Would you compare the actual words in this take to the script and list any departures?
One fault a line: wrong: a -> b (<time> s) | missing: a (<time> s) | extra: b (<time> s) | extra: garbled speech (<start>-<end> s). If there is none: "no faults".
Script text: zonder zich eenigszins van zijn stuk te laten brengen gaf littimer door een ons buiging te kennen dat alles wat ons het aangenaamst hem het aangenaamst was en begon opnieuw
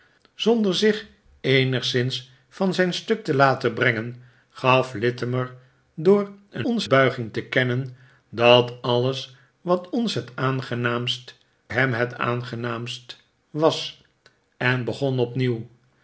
no faults